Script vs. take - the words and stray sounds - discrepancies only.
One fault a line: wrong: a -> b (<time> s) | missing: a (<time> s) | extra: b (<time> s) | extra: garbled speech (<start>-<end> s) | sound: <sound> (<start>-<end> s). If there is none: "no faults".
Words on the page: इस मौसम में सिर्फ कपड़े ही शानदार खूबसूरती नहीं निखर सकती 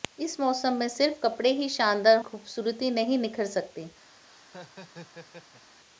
sound: laugh (4.2-5.8 s)